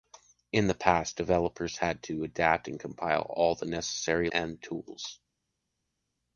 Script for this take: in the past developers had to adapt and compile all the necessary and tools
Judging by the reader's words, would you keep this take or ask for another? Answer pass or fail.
pass